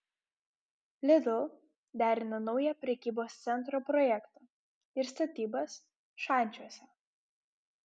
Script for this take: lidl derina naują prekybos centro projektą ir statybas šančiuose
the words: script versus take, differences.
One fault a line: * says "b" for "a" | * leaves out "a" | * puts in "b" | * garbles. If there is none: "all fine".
all fine